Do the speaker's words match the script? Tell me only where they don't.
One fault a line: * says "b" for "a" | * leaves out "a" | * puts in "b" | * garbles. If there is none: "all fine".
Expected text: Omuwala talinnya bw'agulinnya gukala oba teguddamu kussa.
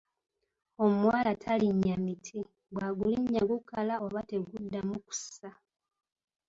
* puts in "miti"